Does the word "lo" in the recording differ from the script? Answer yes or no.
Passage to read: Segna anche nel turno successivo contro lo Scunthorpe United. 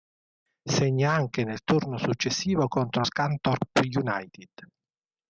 yes